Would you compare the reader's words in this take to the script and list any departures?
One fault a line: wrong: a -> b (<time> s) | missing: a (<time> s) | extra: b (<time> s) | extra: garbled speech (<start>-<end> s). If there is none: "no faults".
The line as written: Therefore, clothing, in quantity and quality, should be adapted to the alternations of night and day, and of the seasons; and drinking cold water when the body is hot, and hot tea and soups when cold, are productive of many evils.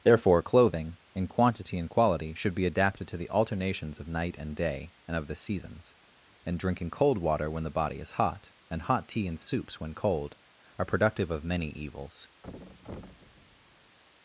no faults